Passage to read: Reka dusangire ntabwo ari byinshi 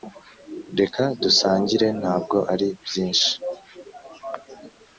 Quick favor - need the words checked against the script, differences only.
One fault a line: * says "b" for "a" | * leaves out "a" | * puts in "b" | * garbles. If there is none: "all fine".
all fine